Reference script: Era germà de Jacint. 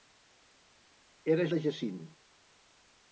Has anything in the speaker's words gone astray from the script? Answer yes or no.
yes